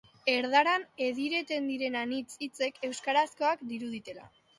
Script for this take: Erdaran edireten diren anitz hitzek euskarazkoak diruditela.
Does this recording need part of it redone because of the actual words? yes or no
no